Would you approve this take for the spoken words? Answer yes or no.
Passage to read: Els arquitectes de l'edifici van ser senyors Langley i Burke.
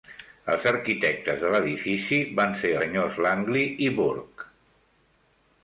yes